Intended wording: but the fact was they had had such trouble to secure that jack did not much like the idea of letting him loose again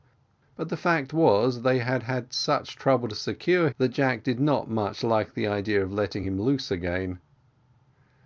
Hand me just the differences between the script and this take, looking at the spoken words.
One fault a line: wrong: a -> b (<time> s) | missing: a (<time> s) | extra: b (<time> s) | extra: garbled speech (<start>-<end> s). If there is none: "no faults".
no faults